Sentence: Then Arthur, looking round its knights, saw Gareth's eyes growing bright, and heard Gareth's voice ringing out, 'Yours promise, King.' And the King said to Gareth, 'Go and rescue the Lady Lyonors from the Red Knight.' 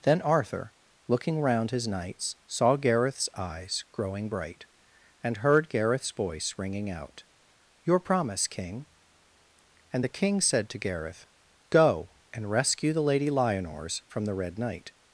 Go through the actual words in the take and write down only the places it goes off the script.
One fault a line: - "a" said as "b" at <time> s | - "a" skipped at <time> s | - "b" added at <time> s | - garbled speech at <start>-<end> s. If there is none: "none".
- "its" said as "his" at 1.7 s
- "Yours" said as "Your" at 7.8 s